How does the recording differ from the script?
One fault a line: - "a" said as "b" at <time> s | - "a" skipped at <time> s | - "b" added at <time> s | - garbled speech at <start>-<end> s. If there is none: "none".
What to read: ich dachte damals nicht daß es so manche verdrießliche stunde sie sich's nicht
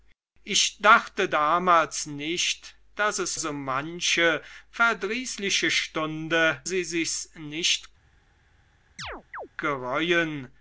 none